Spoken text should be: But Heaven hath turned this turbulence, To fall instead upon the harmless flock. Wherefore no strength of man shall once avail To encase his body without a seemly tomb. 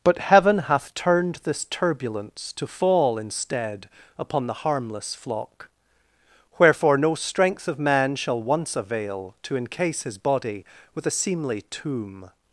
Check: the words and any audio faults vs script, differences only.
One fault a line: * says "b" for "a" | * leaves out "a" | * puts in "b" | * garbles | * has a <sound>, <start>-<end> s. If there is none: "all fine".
* says "with" for "without"